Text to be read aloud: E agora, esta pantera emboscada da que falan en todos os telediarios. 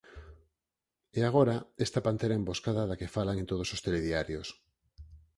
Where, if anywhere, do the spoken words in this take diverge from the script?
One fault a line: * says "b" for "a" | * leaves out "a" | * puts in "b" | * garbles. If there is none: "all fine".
all fine